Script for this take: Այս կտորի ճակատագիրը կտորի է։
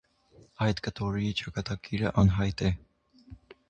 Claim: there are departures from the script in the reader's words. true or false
true